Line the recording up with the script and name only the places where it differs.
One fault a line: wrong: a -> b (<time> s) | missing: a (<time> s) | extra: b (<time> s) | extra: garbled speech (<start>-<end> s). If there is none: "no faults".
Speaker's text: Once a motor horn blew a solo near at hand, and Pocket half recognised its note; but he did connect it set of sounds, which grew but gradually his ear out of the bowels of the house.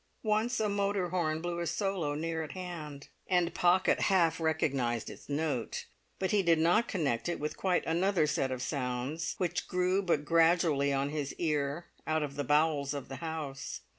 extra: not (6.6 s)
extra: with quite another (7.4 s)
extra: on (10.9 s)